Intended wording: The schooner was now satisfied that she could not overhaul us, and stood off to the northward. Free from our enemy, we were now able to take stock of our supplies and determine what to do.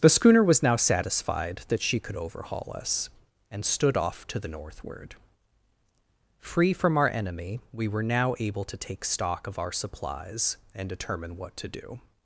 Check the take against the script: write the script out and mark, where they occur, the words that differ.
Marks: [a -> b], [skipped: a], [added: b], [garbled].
The schooner was now satisfied that she could [skipped: not] overhaul us, and stood off to the northward. Free from our enemy, we were now able to take stock of our supplies and determine what to do.